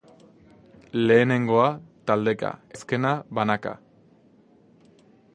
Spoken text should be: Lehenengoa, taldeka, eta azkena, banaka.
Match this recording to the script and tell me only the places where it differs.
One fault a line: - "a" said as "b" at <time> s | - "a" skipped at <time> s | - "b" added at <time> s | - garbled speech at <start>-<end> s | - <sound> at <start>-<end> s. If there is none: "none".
- "eta" skipped at 2.6 s